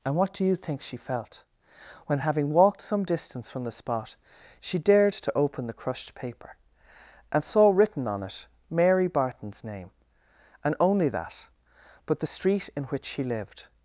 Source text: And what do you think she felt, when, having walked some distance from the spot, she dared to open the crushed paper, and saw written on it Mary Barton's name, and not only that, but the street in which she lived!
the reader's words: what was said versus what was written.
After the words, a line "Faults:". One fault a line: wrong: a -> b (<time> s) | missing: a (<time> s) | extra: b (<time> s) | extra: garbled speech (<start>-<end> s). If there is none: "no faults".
And what do you think she felt, when, having walked some distance from the spot, she dared to open the crushed paper, and saw written on it Mary Barton's name, and only that, but the street in which she lived!
Faults:
missing: not (10.7 s)